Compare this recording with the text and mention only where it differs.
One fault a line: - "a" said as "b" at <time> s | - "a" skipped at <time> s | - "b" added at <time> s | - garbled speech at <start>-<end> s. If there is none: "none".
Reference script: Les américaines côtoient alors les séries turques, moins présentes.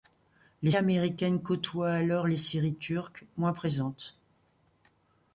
none